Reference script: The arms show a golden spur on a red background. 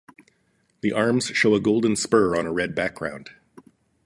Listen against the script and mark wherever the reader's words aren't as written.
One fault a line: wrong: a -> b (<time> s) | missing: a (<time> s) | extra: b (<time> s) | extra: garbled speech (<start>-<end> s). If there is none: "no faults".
no faults